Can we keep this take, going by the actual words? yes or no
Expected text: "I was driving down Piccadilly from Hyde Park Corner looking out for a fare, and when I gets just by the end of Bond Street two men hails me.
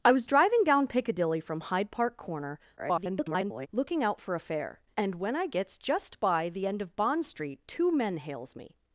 no